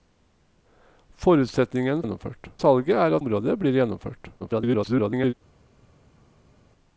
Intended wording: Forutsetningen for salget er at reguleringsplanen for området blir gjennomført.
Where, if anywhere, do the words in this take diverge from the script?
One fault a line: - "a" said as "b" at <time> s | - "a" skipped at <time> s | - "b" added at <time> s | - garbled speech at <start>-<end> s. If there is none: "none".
- "for" said as "gjennomført" at 2.0 s
- "at reguleringsplanen for" skipped at 3.2 s
- garbled speech at 4.4-5.3 s